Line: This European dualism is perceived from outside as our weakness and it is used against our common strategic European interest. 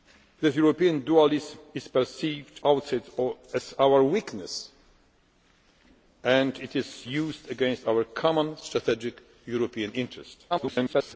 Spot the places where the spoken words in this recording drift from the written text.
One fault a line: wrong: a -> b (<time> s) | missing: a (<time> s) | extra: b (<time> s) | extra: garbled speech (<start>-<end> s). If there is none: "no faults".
missing: from (2.6 s)
extra: garbled speech (10.5-11.2 s)